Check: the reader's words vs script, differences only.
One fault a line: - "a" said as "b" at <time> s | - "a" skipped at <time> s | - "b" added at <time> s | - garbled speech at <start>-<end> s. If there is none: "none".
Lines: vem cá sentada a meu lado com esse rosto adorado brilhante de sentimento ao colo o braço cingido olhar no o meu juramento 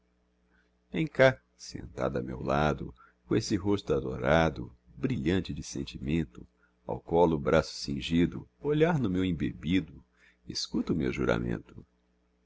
- "meu embebido escuta" added at 9.1 s